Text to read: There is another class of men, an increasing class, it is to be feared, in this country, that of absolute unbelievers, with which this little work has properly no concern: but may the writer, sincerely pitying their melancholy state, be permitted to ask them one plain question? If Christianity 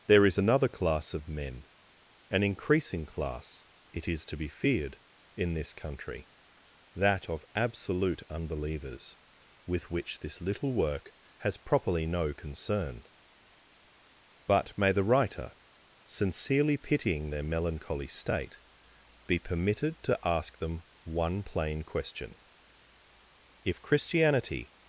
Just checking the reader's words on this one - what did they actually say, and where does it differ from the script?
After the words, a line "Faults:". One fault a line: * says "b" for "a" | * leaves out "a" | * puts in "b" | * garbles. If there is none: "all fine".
There is another class of men, an increasing class, it is to be feared, in this country, that of absolute unbelievers, with which this little work has properly no concern: but may the writer, sincerely pitying their melancholy state, be permitted to ask them one plain question? If Christianity
Faults:
all fine